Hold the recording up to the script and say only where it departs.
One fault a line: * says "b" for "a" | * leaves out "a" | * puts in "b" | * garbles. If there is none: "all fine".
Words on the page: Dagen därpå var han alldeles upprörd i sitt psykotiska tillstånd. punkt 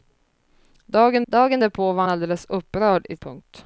* puts in "dagen"
* leaves out "han"
* leaves out "sitt psykotiska tillstånd"